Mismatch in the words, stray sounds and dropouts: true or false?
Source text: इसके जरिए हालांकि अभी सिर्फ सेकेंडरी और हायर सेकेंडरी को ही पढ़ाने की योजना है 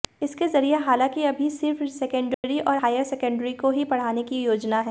true